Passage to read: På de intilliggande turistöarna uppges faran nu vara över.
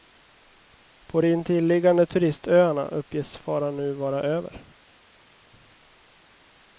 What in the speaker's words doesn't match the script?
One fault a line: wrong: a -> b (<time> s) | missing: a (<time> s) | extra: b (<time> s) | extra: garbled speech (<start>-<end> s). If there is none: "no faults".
no faults